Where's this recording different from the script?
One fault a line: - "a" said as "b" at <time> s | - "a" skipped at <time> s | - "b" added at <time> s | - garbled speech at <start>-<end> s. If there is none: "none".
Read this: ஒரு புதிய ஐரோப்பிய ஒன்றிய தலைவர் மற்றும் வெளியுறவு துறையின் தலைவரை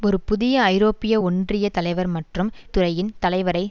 - "வெளியுறவு" skipped at 2.5 s